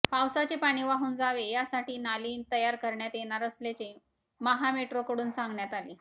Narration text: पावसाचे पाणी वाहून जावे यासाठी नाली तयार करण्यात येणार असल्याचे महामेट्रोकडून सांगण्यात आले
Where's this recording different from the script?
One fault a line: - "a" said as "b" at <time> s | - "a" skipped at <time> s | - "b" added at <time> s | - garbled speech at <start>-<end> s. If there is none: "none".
none